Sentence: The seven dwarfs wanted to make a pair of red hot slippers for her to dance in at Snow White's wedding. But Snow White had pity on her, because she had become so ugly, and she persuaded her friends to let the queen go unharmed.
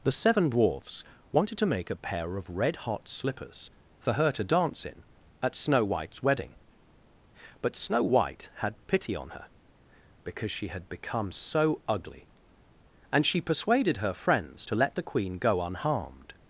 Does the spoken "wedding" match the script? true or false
true